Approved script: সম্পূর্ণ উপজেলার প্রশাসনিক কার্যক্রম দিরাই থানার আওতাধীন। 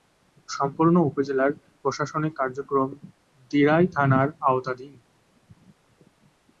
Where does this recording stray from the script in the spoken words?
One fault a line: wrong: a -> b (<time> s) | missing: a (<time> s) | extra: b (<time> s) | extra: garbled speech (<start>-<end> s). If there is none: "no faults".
no faults